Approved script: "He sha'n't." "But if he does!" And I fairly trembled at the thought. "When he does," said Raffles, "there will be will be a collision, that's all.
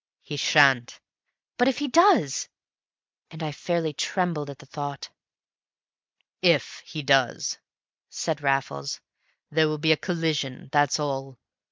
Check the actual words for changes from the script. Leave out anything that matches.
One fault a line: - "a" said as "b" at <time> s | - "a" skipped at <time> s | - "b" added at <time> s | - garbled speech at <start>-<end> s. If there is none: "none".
- "When" said as "If" at 6.4 s
- "will be" skipped at 9.9 s